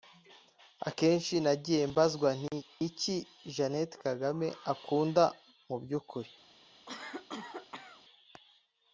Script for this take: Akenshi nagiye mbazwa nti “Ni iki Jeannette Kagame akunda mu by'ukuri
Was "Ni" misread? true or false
true